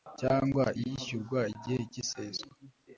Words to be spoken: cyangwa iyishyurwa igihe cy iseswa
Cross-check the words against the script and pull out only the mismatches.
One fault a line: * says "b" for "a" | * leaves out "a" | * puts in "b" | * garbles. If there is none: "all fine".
all fine